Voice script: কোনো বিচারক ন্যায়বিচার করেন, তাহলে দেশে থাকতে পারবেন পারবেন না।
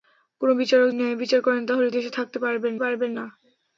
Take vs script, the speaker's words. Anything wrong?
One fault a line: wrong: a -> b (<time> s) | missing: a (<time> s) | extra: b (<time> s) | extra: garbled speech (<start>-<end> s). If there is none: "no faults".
no faults